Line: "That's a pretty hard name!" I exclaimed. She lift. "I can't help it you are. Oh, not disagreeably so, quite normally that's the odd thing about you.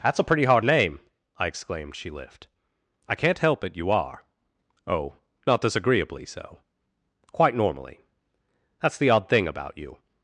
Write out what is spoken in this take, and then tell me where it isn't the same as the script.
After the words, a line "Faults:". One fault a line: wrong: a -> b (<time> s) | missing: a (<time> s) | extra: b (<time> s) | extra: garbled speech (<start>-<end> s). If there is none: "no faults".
"That's a pretty hard name!" I exclaimed. She lift. "I can't help it you are. Oh, not disagreeably so, quite normally that's the odd thing about you.
Faults:
no faults